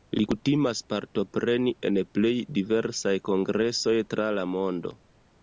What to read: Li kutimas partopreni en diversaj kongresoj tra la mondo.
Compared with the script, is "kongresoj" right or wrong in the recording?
right